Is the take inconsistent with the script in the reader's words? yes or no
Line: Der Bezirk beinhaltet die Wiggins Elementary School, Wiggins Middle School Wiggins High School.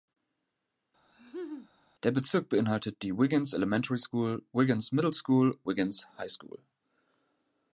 no